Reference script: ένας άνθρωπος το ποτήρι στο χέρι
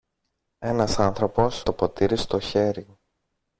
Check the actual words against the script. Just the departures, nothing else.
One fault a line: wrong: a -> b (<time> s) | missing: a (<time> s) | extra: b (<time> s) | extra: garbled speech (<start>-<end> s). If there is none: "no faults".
no faults